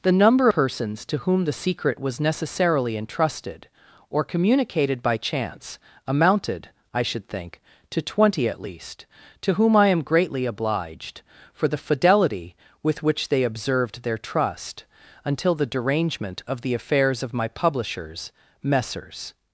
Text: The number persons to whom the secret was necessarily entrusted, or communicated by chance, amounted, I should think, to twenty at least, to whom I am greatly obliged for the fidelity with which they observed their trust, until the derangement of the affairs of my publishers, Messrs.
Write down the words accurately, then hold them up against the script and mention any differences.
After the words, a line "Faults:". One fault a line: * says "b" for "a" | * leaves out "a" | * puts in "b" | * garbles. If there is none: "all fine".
The number persons to whom the secret was necessarily entrusted, or communicated by chance, amounted, I should think, to twenty at least, to whom I am greatly obliged for the fidelity with which they observed their trust, until the derangement of the affairs of my publishers, Messrs.
Faults:
all fine